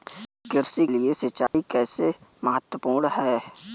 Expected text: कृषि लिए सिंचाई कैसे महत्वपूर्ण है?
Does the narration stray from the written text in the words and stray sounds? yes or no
yes